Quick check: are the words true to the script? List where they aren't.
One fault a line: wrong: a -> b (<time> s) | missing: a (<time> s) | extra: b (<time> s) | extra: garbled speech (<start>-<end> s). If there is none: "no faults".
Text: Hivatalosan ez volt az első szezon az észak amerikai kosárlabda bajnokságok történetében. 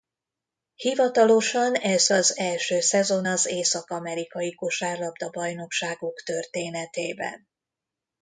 missing: volt (2.1 s)